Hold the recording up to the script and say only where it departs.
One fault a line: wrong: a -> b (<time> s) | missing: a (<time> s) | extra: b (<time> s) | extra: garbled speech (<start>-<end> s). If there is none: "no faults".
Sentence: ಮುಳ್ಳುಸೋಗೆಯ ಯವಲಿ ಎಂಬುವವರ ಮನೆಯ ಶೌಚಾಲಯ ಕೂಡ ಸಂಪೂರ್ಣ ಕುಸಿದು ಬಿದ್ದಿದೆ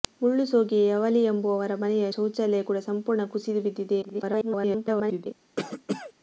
extra: garbled speech (4.0-5.3 s)